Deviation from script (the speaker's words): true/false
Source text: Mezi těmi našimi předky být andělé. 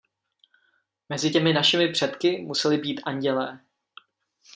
true